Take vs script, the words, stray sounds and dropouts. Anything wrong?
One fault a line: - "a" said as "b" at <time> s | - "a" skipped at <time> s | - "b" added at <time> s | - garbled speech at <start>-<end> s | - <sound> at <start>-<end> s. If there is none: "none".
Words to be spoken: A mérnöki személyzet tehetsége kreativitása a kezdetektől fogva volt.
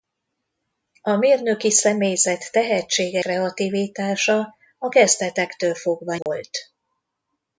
- dropout at 6.2-6.3 s